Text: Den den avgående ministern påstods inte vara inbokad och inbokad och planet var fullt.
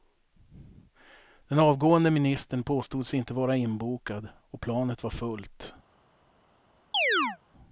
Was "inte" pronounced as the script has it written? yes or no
yes